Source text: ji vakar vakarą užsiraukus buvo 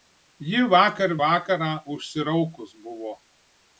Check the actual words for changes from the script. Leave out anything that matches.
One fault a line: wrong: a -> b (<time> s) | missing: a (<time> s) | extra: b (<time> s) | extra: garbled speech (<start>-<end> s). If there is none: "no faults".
no faults